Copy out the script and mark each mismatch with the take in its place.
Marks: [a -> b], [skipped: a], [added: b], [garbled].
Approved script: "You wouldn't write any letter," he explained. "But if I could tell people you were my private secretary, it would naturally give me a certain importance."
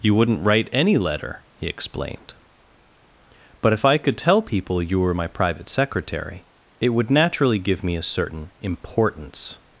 "You wouldn't write any letter," he explained. "But if I could tell people you were my private secretary, it would naturally give me a certain importance."